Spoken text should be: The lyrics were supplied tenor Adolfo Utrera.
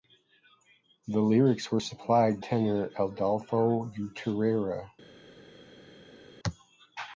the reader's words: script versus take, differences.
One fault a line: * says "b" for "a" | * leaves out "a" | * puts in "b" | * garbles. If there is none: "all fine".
all fine